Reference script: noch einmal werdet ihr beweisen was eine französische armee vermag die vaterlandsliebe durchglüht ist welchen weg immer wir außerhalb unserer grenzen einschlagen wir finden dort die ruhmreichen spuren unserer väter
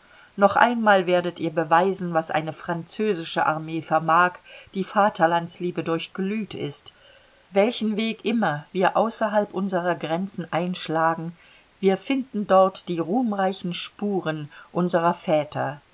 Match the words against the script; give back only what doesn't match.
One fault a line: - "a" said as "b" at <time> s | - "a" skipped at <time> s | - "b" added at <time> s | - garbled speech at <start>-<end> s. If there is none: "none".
none